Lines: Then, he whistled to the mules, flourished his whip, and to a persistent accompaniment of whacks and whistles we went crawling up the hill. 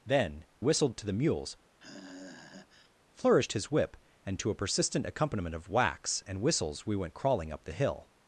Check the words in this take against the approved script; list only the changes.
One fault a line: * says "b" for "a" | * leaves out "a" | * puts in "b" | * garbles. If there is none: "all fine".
* leaves out "he"